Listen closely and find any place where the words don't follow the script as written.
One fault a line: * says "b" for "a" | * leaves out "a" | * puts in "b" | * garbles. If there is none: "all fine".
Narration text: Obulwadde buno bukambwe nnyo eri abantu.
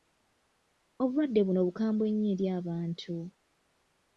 all fine